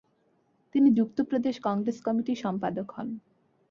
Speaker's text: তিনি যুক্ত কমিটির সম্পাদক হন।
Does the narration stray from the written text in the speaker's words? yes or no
yes